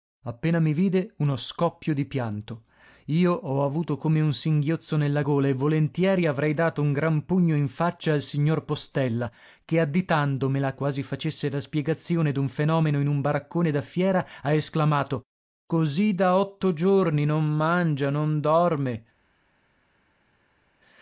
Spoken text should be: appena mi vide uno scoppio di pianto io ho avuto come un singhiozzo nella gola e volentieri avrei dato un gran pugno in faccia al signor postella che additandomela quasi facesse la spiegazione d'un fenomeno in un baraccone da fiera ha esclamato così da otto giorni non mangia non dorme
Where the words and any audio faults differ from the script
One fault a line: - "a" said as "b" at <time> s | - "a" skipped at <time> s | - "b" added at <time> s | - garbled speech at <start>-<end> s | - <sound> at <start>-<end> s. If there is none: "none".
none